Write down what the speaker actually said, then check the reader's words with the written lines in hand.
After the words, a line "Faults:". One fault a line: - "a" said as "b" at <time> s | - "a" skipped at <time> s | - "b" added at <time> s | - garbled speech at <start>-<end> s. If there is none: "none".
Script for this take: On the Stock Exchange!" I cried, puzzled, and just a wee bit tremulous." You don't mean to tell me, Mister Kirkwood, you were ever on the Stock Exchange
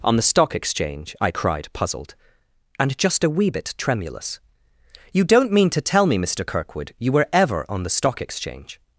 On the Stock Exchange!" I cried, puzzled, and just a wee bit tremulous." You don't mean to tell me, Mister Kirkwood, you were ever on the Stock Exchange
Faults:
none